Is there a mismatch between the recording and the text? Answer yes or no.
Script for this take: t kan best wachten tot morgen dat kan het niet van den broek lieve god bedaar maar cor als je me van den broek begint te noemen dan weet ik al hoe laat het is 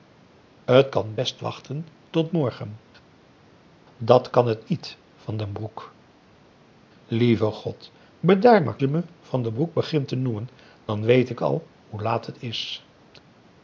yes